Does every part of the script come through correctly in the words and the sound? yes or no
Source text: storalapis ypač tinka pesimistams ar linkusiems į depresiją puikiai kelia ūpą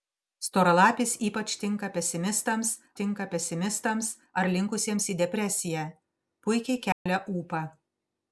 no